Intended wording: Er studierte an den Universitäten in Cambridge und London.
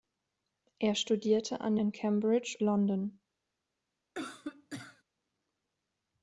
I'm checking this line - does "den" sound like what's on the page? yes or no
no